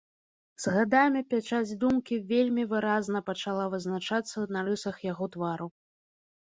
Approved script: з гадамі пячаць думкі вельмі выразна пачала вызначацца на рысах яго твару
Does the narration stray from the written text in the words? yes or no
no